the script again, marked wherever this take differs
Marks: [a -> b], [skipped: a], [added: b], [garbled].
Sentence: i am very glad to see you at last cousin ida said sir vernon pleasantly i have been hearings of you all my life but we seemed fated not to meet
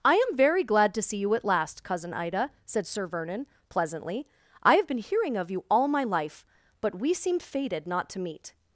i am very glad to see you at last cousin ida said sir vernon pleasantly i have been [hearings -> hearing] of you all my life but we seemed fated not to meet